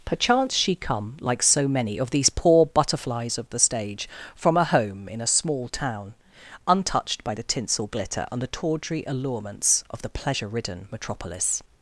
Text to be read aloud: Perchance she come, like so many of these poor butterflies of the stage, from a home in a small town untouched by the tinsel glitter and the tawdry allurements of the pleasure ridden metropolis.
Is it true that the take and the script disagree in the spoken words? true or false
false